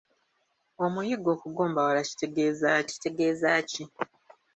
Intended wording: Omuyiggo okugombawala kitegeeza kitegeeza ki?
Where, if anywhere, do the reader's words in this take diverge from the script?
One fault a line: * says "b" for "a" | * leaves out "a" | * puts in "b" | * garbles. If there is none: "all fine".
all fine